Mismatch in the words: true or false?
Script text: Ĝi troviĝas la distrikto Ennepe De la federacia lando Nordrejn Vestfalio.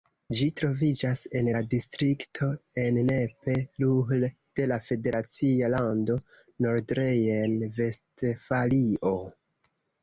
true